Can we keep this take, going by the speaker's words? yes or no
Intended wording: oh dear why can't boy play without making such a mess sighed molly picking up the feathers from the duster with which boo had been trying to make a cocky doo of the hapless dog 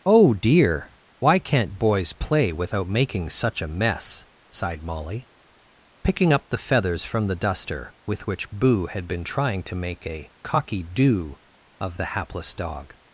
no